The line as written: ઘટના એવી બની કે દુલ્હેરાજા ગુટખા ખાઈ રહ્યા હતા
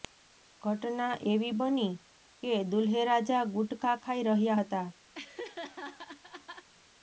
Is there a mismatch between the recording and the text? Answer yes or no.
no